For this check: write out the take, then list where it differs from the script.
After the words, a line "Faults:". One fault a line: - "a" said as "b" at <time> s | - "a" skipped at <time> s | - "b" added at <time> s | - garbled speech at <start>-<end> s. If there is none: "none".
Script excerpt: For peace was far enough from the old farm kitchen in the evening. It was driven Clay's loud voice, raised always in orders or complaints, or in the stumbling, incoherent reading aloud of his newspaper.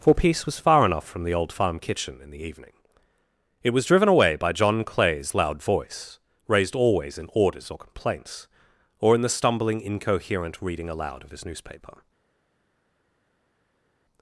For peace was far enough from the old farm kitchen in the evening. It was driven away by John Clay's loud voice, raised always in orders or complaints, or in the stumbling, incoherent reading aloud of his newspaper.
Faults:
- "away by John" added at 4.1 s